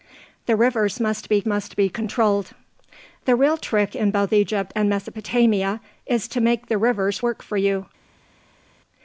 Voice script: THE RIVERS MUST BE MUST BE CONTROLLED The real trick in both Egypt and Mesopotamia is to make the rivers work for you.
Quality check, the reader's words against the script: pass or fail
pass